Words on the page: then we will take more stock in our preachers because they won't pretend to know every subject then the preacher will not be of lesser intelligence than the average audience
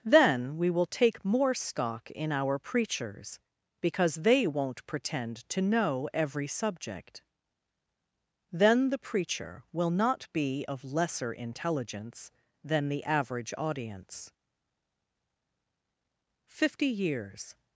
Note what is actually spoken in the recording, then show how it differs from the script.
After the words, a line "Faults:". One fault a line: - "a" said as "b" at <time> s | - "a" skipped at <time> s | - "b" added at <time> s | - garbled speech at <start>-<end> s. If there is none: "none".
then we will take more stock in our preachers because they won't pretend to know every subject then the preacher will not be of lesser intelligence than the average audience fifty years
Faults:
- "fifty years" added at 16.5 s